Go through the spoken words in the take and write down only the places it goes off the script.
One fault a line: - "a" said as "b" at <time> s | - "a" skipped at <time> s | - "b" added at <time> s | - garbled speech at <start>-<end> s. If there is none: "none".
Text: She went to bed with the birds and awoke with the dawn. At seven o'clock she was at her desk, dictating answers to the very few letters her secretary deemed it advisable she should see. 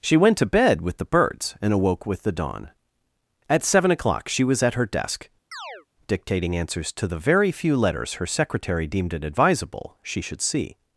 none